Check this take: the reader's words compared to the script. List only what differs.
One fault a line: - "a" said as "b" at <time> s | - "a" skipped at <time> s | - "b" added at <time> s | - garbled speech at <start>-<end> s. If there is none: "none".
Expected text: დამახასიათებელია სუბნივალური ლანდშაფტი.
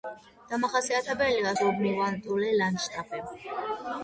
none